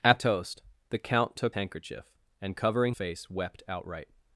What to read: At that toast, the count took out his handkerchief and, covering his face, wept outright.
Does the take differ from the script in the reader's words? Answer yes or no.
yes